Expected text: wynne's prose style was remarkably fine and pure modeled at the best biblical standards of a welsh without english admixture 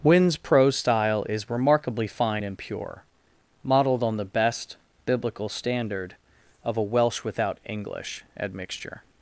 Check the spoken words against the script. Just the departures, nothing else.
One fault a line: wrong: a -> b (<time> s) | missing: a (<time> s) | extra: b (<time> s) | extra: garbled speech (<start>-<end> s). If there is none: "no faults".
wrong: was -> is (1.3 s)
wrong: at -> on (4.0 s)
wrong: standards -> standard (5.5 s)